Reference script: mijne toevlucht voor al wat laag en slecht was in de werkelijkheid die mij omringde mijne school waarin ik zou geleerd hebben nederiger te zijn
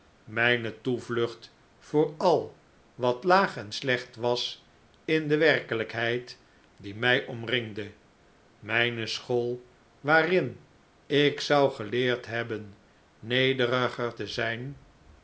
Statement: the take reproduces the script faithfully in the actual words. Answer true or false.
true